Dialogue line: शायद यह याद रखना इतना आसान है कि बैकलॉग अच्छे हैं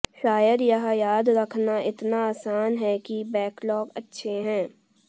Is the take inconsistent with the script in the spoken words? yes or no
no